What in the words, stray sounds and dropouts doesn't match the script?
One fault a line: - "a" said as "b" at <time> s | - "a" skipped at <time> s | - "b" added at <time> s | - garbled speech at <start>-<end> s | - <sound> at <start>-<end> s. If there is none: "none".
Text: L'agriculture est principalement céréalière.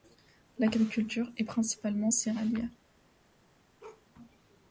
- bark at 3.8-4.1 s